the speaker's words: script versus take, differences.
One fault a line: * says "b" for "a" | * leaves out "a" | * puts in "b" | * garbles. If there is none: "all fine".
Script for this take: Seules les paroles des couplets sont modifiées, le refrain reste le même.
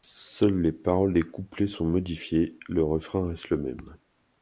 all fine